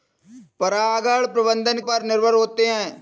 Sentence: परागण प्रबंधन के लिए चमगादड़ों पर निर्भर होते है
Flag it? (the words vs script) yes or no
yes